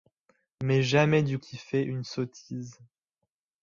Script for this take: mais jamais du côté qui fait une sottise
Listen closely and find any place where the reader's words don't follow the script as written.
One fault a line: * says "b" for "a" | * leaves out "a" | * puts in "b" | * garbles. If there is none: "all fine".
* leaves out "côté"